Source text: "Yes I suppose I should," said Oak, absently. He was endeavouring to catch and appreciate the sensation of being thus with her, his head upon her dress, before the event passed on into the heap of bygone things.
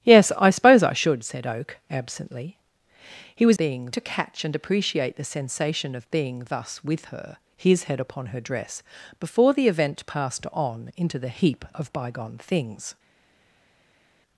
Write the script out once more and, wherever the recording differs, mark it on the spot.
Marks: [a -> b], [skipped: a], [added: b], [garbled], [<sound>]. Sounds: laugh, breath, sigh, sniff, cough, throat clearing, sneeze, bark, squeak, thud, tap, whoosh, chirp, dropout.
"Yes I suppose I should," said Oak, absently. He was [endeavouring -> being] to catch and appreciate the sensation of being thus with her, his head upon her dress, before the event passed on into the heap of bygone things.